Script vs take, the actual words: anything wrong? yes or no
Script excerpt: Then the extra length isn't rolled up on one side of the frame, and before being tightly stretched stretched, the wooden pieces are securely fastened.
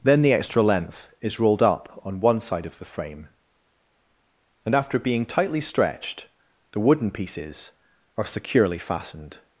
yes